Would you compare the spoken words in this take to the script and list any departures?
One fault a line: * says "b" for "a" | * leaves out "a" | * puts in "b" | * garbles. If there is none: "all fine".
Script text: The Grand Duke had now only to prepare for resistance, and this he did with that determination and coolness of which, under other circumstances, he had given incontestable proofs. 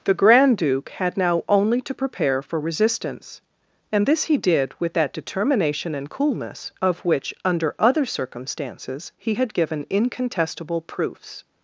all fine